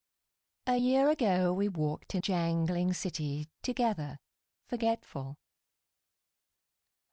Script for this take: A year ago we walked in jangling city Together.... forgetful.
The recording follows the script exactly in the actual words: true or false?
true